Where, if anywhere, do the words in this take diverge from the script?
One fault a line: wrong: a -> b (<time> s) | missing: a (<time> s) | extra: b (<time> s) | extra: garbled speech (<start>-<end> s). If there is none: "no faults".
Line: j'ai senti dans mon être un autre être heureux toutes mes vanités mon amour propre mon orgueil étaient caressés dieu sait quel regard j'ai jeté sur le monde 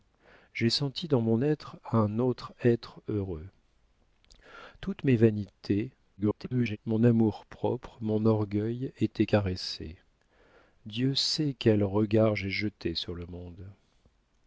extra: garbled speech (6.2-6.8 s)